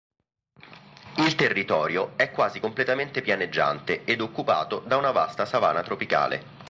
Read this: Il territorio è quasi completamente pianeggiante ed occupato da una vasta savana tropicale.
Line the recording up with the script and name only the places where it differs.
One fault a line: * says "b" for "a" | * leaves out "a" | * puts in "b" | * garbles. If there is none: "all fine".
all fine